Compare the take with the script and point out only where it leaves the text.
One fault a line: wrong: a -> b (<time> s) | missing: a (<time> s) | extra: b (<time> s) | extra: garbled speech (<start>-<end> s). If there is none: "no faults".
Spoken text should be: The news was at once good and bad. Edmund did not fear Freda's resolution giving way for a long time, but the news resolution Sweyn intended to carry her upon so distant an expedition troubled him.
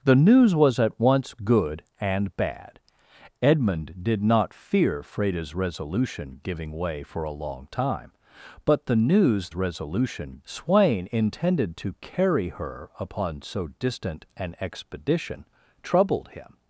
no faults